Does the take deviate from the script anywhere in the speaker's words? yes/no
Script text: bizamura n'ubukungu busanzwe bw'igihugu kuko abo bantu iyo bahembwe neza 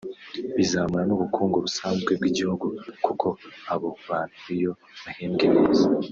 no